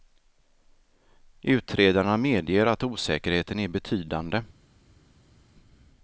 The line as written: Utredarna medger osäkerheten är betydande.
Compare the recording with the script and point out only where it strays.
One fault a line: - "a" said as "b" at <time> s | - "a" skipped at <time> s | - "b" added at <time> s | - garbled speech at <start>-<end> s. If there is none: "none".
- "att" added at 2.6 s